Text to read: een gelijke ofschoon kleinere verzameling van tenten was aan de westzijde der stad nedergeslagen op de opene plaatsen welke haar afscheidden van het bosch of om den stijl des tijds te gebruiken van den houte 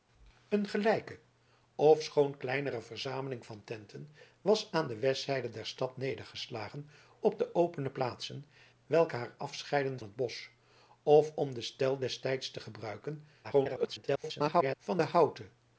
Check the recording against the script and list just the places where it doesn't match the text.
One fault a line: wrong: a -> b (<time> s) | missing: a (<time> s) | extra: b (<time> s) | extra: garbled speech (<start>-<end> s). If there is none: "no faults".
missing: van (10.0 s)
extra: garbled speech (13.4-14.8 s)